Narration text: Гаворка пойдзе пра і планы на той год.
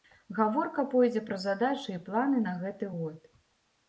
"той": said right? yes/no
no